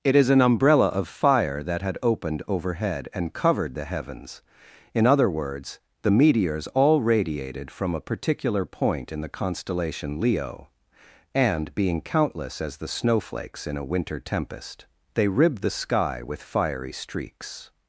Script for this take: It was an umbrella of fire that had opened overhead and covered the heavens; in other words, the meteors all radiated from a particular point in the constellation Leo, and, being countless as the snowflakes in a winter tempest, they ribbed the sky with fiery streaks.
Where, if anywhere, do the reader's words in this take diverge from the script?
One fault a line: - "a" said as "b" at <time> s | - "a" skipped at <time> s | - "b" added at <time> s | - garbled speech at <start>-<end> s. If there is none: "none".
- "was" said as "is" at 0.1 s